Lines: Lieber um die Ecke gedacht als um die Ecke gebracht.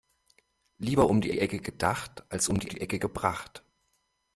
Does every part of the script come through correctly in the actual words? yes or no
no